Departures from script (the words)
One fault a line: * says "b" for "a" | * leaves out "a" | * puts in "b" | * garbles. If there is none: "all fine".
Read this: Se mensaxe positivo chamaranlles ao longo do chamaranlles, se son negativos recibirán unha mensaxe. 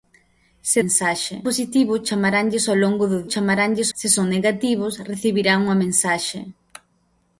all fine